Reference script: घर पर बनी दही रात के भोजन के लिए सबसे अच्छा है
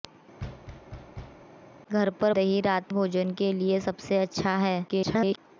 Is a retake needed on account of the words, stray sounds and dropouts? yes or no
yes